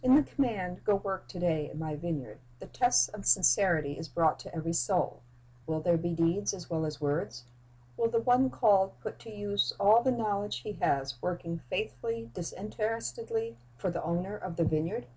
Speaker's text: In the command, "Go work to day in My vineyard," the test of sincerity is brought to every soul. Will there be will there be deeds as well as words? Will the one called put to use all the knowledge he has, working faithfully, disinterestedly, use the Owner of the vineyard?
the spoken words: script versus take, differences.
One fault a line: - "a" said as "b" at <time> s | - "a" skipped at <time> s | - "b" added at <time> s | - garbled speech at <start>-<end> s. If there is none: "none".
- "will there be" skipped at 6.1 s
- "use" said as "for" at 13.8 s